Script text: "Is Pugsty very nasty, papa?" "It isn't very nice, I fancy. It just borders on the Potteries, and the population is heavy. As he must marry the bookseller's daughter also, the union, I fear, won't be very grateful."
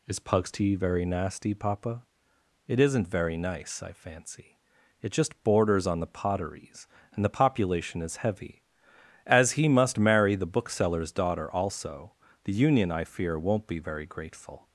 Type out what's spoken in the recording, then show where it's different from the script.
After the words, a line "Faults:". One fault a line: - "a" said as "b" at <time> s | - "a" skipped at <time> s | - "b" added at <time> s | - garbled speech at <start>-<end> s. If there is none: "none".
"Is Pugsty very nasty, papa?" "It isn't very nice, I fancy. It just borders on the Potteries, and the population is heavy. As he must marry the bookseller's daughter also, the union, I fear, won't be very grateful."
Faults:
none